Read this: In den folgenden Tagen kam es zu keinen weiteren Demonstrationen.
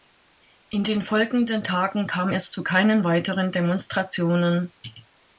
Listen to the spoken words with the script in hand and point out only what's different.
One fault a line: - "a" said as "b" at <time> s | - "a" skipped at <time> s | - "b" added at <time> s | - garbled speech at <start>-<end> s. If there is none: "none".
none